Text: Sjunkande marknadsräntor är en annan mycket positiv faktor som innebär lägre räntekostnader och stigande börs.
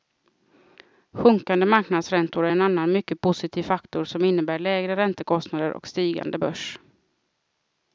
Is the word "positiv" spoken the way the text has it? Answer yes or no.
yes